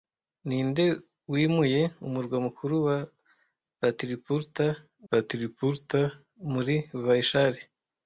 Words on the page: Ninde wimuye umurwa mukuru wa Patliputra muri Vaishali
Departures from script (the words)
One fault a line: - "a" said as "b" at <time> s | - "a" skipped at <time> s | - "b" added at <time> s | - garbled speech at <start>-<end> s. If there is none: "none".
- "Patliputra" added at 5.1 s